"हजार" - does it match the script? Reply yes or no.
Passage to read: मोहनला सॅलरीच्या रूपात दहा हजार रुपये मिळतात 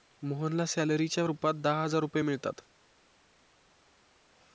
yes